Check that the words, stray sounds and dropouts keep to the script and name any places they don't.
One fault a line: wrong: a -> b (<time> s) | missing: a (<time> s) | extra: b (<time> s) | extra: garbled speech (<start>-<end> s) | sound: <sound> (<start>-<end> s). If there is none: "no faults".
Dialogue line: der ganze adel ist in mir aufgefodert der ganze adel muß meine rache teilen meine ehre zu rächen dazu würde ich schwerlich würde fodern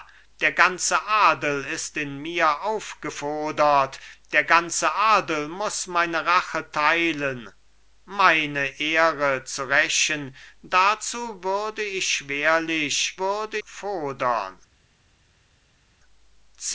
no faults